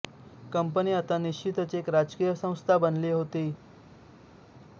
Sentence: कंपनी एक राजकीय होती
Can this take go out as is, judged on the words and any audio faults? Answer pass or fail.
fail